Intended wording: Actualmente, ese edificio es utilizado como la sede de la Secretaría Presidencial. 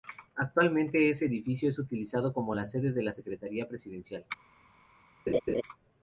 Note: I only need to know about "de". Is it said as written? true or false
true